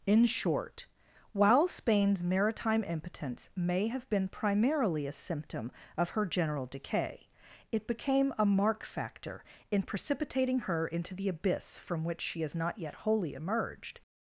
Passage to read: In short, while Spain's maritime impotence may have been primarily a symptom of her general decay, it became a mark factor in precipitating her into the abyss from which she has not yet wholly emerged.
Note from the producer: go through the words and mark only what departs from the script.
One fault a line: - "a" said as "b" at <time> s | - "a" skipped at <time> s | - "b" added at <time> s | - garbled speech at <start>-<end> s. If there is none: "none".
none